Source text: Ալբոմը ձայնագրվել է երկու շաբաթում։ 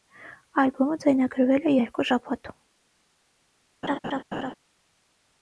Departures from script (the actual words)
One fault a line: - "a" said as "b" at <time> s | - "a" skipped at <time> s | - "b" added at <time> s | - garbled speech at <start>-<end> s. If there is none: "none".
none